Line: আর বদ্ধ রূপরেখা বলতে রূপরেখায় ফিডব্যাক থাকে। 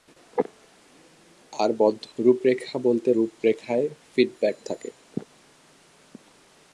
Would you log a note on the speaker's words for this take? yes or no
no